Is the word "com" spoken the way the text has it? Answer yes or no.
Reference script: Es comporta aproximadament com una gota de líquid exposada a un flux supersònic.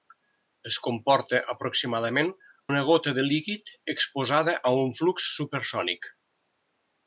no